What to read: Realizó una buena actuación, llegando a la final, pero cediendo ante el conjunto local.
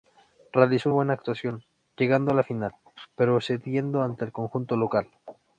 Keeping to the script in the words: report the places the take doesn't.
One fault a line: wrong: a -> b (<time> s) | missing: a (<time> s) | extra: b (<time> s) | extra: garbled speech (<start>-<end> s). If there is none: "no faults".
missing: una (0.9 s)